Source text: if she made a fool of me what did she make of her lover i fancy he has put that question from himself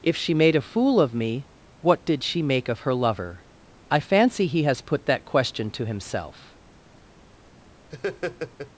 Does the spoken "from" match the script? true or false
false